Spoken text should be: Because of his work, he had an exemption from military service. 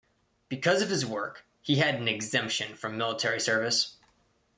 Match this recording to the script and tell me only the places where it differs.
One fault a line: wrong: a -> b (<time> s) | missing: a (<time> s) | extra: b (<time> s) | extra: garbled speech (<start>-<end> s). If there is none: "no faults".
no faults